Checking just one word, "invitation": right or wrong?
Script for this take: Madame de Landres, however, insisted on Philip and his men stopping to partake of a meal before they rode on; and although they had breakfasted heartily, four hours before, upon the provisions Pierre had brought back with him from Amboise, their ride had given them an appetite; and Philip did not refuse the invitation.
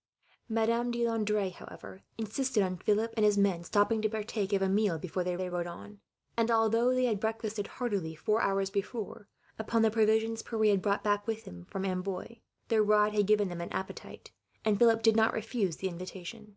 right